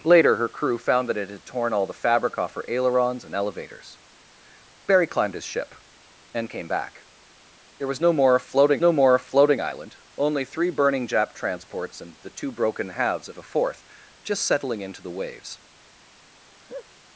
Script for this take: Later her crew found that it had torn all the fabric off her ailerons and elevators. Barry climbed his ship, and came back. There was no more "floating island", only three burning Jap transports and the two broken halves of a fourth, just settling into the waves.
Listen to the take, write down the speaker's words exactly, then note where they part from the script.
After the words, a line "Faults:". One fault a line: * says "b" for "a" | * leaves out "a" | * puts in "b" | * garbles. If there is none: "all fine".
Later her crew found that it had torn all the fabric off her ailerons and elevators. Barry climbed his ship, and came back. There was no more "floating no more floating island", only three burning Jap transports and the two broken halves of a fourth, just settling into the waves.
Faults:
* puts in "no more floating"